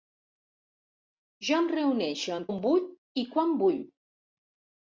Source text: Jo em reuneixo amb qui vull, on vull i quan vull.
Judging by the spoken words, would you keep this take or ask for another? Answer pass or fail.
fail